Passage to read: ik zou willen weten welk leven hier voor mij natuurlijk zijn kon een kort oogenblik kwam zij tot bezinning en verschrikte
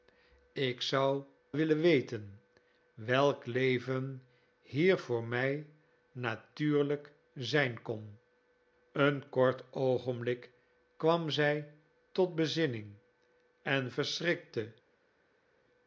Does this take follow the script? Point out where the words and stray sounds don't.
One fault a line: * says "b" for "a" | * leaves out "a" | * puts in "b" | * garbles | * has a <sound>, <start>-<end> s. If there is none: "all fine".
all fine